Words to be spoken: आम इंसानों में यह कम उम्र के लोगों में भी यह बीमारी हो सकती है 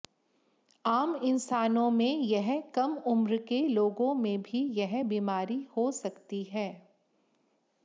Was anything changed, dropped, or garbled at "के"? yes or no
no